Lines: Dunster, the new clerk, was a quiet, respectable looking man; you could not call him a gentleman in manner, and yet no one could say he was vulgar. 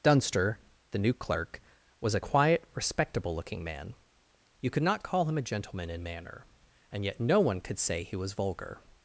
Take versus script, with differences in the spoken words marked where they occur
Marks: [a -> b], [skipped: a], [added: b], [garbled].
Dunster, the new clerk, was a quiet, respectable looking man; you could not call him a gentleman in manner, and yet no one could say he was vulgar.